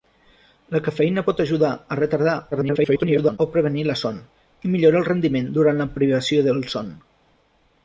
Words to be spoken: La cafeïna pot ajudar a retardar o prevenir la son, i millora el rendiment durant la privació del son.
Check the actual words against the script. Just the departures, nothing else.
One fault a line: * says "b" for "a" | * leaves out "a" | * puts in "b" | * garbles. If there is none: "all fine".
* garbles